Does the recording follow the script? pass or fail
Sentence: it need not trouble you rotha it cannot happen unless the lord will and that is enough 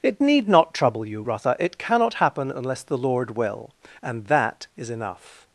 pass